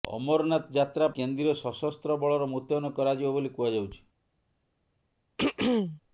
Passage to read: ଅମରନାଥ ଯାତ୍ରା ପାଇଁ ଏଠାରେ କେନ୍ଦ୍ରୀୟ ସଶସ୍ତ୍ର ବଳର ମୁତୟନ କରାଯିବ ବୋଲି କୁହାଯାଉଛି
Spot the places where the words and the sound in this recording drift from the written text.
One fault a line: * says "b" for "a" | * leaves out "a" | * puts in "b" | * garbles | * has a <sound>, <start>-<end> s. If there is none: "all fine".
* leaves out "ପାଇଁ ଏଠାରେ"
* has a throat clearing, 5.4-6.0 s